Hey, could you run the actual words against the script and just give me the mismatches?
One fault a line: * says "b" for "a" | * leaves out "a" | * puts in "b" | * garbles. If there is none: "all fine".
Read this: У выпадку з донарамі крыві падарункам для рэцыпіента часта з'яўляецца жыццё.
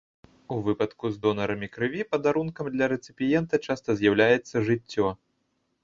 all fine